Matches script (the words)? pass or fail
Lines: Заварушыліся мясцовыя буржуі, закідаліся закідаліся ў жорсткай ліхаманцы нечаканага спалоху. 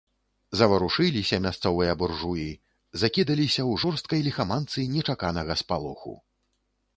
fail